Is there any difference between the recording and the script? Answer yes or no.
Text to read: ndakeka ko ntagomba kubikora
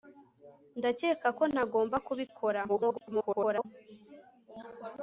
yes